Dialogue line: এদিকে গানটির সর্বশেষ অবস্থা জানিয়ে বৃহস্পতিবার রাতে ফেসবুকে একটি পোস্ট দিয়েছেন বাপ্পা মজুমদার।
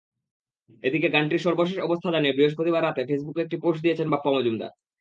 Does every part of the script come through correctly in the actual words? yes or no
yes